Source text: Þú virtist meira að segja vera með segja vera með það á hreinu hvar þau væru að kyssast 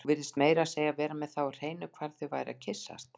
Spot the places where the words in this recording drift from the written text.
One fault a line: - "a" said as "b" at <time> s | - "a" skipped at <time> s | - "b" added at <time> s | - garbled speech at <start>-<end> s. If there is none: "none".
- "segja vera með" skipped at 1.3 s